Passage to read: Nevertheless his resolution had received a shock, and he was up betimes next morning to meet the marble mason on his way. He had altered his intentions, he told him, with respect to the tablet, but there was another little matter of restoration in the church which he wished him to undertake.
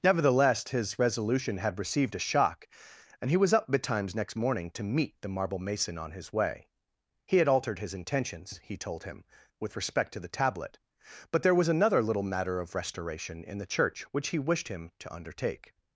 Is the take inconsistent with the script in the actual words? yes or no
no